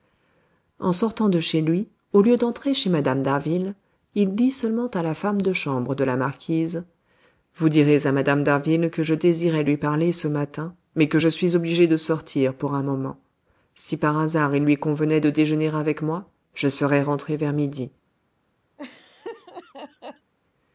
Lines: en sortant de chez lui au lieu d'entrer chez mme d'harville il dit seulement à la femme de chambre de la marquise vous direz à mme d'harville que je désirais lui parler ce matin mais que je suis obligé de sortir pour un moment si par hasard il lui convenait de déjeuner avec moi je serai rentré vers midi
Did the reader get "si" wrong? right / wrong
right